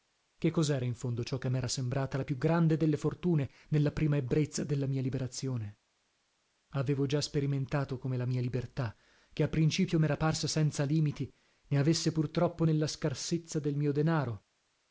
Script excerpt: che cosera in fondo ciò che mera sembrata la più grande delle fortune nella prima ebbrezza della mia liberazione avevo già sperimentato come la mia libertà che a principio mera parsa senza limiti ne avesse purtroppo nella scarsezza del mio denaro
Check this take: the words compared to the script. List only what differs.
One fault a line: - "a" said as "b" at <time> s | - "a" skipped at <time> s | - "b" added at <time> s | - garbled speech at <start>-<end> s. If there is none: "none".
none